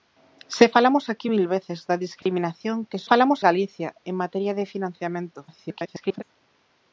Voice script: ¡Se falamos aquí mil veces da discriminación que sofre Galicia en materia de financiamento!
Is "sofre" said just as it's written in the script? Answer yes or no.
no